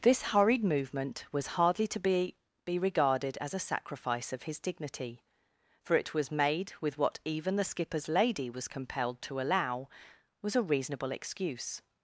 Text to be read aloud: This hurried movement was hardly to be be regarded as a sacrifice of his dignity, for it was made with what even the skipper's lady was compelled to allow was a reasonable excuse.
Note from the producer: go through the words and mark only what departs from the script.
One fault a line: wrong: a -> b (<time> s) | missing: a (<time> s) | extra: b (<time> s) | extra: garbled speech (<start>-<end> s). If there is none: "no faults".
no faults